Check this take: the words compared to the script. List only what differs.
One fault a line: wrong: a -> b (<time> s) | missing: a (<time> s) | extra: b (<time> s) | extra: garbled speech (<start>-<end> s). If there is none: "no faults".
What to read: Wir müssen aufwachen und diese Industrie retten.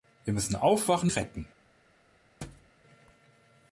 missing: und diese Industrie (1.1 s)